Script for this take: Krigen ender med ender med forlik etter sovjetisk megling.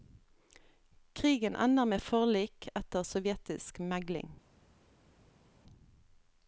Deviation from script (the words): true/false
true